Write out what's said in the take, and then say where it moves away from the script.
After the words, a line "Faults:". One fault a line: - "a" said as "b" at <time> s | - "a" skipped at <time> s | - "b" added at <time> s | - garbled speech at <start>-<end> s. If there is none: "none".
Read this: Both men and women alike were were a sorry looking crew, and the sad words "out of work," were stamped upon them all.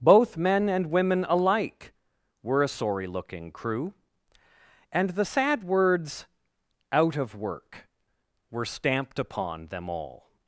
Both men and women alike were a sorry looking crew, and the sad words "out of work," were stamped upon them all.
Faults:
- "were" skipped at 2.6 s